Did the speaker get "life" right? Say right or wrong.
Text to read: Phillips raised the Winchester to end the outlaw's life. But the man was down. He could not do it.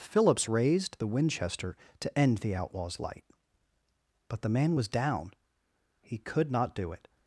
wrong